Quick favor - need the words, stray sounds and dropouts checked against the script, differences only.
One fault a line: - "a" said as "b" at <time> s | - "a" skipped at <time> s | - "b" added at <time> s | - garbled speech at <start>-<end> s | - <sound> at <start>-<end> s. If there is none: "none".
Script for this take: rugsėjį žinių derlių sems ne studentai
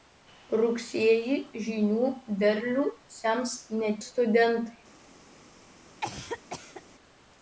- cough at 6.0-6.8 s